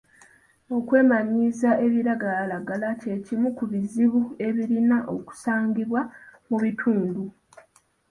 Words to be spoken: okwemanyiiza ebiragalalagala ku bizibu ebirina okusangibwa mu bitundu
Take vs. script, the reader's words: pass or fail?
fail